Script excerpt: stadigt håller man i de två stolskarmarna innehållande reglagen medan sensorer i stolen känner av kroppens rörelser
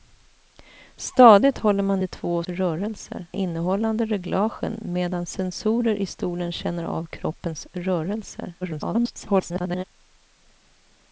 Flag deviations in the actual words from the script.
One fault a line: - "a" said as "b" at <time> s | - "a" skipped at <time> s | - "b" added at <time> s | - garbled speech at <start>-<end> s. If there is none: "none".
- "i" skipped at 2.0 s
- "stolskarmarna" said as "rörelser" at 2.4 s
- garbled speech at 8.6-9.8 s